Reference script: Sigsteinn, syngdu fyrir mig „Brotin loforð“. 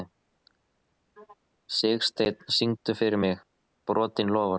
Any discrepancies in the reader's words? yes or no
no